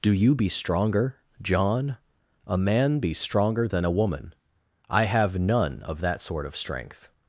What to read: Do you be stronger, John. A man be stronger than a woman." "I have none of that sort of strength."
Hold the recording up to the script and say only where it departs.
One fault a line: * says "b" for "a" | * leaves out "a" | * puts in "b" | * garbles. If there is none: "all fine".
all fine